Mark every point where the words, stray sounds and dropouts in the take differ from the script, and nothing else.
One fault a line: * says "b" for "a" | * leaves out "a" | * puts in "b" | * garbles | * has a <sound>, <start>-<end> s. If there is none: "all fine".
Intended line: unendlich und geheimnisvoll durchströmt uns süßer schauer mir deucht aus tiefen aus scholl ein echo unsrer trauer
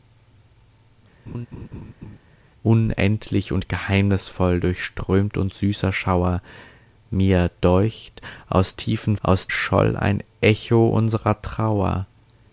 * has a laugh, 1.3-2.2 s